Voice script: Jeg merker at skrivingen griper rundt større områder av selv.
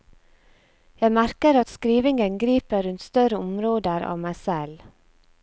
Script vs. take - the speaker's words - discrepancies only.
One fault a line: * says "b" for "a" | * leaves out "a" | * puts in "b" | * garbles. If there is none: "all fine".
* puts in "meg"